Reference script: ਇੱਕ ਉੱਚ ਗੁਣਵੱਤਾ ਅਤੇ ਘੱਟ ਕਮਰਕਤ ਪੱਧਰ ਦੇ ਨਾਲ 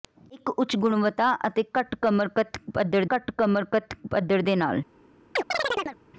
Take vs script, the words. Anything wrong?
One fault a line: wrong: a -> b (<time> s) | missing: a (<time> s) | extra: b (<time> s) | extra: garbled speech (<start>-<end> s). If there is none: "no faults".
extra: ਘੱਟ ਕਮਰਕਤ ਪੱਧਰ (3.1 s)